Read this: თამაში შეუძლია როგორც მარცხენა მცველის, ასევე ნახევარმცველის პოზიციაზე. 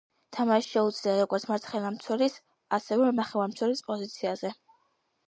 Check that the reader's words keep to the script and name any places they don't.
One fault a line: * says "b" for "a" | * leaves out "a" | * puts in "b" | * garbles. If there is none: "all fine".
all fine